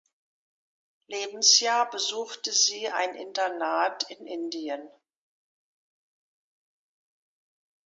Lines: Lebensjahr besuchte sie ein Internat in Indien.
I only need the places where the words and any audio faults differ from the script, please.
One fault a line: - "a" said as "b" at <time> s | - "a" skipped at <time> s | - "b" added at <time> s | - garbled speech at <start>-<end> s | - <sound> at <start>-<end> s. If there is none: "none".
none